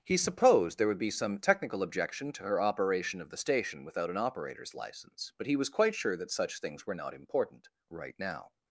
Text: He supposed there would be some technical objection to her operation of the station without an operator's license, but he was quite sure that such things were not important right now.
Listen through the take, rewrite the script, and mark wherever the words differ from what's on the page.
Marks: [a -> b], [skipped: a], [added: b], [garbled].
He supposed there would be some technical objection to her operation of the station without an operator's license, but he was quite sure that such things were not important right now.